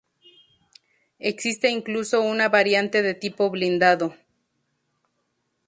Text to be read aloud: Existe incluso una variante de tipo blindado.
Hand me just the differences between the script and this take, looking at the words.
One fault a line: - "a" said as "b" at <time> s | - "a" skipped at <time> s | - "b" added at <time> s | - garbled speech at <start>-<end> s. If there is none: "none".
none